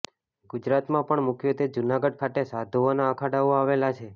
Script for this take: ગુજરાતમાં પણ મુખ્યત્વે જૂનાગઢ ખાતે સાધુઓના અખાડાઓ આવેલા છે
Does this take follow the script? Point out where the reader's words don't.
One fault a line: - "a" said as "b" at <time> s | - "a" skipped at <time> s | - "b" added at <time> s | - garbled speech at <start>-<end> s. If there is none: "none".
none